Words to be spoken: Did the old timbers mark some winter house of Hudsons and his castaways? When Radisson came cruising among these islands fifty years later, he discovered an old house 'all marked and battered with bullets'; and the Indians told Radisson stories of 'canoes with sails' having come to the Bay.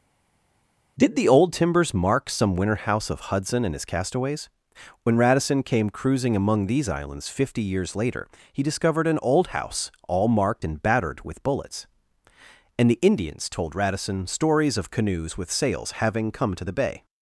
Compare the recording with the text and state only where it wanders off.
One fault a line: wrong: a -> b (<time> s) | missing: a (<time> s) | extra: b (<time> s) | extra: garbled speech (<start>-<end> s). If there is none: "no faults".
wrong: Hudsons -> Hudson (3.3 s)